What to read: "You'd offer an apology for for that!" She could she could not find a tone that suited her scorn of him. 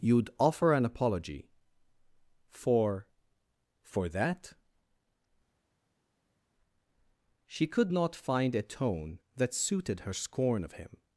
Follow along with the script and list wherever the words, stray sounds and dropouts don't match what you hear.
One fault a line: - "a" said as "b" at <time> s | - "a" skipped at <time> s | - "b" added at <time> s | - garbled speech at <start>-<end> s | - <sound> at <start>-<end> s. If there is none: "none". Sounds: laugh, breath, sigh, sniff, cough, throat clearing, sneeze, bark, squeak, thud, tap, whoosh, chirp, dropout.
- "she could" skipped at 7.9 s